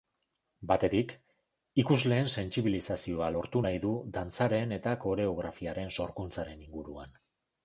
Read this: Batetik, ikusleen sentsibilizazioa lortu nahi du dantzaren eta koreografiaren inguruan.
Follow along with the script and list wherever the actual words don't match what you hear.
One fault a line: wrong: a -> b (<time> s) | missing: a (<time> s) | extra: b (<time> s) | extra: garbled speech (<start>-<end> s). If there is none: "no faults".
extra: sorkuntzaren (6.0 s)